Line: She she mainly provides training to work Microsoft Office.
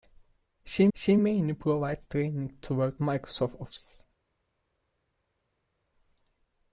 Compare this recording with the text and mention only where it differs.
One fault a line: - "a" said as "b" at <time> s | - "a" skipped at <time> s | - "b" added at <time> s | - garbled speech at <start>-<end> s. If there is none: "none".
none